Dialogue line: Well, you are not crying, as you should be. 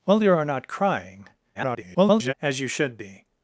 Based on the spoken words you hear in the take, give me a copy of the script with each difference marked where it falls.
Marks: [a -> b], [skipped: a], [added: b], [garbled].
Well, you are not crying, [garbled] as you should be.